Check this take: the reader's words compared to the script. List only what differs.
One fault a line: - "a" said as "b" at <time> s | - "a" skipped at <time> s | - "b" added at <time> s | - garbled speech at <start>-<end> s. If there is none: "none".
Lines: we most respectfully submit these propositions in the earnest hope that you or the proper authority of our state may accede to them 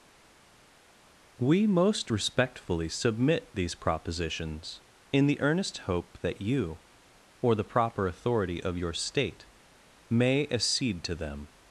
- "our" said as "your" at 8.7 s